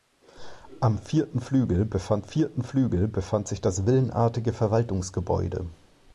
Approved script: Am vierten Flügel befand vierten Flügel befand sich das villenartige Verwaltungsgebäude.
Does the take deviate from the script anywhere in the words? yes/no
no